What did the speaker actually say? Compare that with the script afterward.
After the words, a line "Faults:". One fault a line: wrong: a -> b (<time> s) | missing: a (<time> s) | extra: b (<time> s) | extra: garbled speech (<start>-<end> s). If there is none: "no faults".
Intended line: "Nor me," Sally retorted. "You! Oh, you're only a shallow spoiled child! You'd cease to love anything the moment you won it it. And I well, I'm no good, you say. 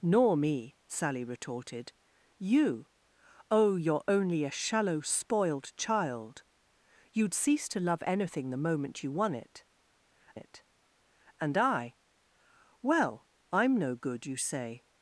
"Nor me," Sally retorted. "You! Oh, you're only a shallow spoiled child! You'd cease to love anything the moment you won it it. And I well, I'm no good, you say.
Faults:
no faults